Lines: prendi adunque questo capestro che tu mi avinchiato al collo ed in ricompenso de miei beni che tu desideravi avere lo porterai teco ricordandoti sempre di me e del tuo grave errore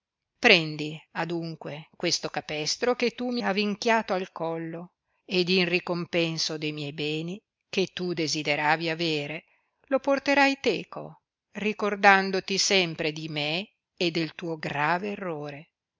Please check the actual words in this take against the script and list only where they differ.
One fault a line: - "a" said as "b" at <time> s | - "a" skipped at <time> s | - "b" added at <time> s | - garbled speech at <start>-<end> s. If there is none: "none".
none